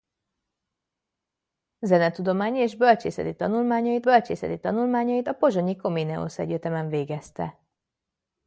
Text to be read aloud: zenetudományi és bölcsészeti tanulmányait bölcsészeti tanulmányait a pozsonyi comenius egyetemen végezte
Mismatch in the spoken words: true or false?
false